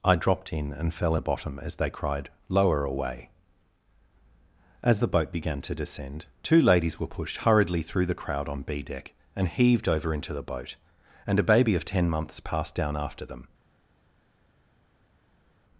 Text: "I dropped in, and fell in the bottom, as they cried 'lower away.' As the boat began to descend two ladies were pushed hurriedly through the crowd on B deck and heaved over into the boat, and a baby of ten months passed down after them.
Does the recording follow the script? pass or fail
fail